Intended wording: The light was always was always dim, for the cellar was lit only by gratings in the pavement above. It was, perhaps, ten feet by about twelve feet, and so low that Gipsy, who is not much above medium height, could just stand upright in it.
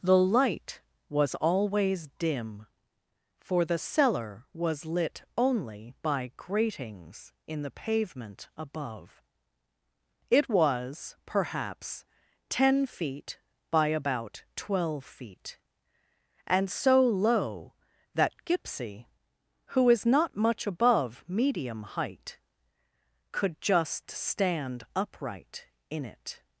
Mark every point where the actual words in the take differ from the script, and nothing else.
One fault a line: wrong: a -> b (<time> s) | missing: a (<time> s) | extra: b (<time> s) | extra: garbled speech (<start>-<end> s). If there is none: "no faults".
missing: was always (2.1 s)